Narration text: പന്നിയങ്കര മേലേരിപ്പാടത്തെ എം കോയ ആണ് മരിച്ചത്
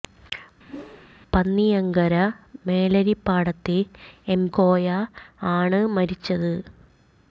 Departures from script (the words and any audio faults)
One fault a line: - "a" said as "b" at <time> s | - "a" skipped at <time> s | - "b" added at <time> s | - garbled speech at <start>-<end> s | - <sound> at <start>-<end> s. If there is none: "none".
- whoosh at 0.7-1.1 s